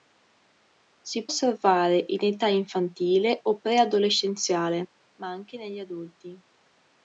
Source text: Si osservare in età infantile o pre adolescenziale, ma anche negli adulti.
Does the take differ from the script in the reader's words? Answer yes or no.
no